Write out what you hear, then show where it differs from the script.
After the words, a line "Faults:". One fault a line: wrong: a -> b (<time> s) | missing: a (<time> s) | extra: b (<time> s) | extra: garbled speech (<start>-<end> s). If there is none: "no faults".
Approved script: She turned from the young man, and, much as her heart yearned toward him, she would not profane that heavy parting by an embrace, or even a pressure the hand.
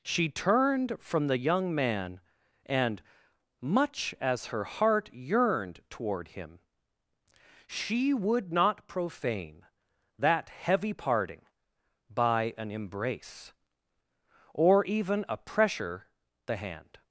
She turned from the young man, and, much as her heart yearned toward him, she would not profane that heavy parting by an embrace, or even a pressure the hand.
Faults:
no faults